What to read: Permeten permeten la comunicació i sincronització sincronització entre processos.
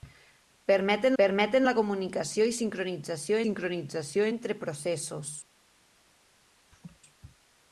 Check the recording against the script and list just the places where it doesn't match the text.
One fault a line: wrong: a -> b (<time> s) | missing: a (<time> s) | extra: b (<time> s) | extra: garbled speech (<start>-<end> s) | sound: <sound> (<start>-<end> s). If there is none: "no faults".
sound: laugh (6.7-7.0 s)